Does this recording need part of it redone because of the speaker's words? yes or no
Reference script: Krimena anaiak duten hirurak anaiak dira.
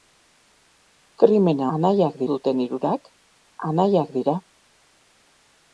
no